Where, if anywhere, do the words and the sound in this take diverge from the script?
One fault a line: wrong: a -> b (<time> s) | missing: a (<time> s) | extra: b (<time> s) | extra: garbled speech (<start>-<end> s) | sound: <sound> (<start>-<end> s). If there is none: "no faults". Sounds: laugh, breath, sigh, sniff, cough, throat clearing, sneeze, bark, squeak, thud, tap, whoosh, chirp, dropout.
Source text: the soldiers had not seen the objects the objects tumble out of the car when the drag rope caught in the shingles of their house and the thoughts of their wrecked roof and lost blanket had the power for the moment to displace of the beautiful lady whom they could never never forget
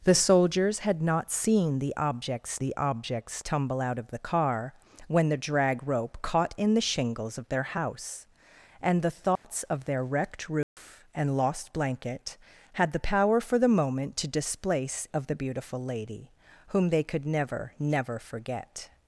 sound: dropout (9.4-9.4 s)
sound: dropout (10.6-10.8 s)